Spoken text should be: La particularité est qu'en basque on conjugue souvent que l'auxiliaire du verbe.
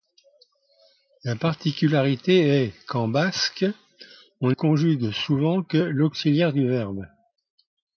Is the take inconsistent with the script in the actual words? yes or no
no